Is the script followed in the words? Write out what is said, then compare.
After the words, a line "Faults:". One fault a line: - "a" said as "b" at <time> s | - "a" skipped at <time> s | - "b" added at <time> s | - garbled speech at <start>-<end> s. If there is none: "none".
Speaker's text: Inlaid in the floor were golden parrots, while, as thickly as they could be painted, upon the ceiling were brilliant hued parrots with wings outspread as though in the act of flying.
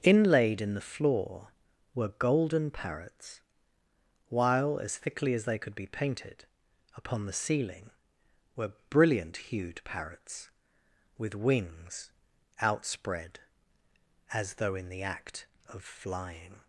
Inlaid in the floor were golden parrots, while, as thickly as they could be painted, upon the ceiling were brilliant hued parrots with wings outspread as though in the act of flying.
Faults:
none